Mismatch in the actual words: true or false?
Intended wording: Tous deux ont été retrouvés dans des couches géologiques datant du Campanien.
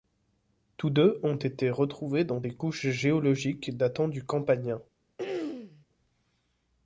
false